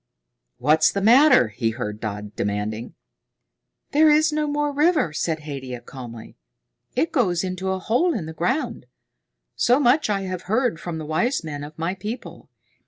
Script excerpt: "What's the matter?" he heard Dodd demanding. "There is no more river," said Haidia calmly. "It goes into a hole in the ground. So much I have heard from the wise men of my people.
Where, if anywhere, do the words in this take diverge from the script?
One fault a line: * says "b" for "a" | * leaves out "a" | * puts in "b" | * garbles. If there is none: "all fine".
all fine